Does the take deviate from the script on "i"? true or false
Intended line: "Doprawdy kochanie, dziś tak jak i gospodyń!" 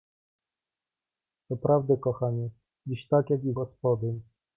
false